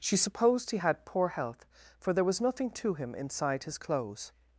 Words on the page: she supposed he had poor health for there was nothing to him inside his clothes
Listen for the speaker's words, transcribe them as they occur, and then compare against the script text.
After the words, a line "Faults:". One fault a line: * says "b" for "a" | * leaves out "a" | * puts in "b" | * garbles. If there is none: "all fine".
she supposed he had poor health for there was nothing to him inside his clothes
Faults:
all fine